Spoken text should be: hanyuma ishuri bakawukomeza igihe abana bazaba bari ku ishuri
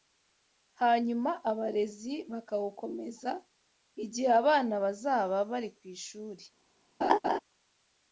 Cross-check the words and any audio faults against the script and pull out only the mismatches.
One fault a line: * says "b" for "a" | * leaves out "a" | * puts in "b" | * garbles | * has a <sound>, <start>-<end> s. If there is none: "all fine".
* says "abarezi" for "ishuri"
* has a laugh, 7.0-7.4 s